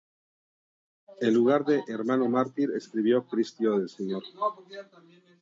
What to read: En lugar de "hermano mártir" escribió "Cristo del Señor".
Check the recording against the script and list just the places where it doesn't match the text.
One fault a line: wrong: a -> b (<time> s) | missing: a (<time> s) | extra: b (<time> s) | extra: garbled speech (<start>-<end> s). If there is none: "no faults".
no faults